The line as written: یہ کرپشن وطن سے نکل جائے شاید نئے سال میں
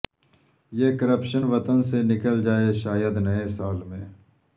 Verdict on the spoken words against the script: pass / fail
pass